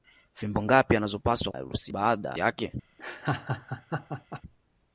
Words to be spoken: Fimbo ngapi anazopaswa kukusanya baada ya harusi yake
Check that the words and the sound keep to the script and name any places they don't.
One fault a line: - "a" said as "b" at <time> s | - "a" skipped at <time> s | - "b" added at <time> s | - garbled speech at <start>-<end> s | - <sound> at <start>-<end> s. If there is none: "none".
- "kukusanya" said as "harusi" at 1.5 s
- "harusi" skipped at 2.4 s
- laugh at 3.0-4.4 s